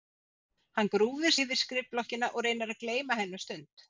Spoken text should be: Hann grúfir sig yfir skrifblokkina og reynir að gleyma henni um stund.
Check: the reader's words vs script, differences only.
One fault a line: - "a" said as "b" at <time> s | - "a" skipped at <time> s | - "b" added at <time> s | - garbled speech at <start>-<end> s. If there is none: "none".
- "sig" skipped at 1.3 s